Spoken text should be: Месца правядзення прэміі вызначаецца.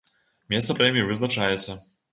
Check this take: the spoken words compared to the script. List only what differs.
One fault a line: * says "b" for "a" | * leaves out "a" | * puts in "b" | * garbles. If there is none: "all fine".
* leaves out "правядзення"